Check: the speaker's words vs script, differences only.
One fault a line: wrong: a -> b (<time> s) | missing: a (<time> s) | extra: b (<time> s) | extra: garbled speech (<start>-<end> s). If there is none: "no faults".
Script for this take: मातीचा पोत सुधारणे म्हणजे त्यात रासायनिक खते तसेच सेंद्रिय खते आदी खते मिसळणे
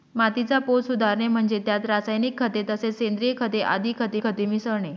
extra: खते (4.2 s)